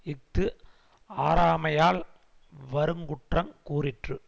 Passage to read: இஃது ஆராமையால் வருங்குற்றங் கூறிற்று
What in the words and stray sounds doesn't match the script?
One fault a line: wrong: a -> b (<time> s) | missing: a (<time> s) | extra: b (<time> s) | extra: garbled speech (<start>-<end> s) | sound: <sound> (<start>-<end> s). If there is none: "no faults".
no faults